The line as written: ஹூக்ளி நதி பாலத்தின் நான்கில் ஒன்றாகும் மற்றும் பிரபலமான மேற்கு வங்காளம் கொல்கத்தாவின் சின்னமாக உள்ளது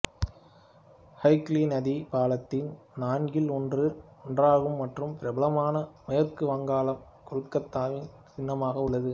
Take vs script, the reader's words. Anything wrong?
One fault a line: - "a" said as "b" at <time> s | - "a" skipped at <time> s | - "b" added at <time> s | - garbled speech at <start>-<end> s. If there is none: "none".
none